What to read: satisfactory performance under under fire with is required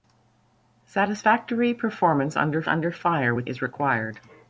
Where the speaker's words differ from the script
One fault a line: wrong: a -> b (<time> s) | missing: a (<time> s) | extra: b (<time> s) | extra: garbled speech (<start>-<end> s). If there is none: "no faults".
no faults